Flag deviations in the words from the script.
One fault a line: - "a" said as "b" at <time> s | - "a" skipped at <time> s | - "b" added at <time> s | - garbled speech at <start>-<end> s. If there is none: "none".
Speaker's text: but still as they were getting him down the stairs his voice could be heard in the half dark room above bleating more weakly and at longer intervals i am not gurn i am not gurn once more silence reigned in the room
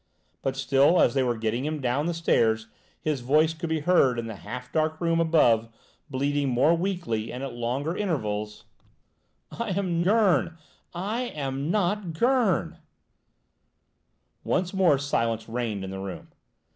- "not" skipped at 10.0 s